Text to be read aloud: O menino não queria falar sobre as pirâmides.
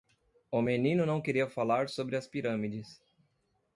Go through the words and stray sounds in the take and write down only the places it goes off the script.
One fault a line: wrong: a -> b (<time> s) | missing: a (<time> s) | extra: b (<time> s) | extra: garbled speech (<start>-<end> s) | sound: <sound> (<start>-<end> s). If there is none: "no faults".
no faults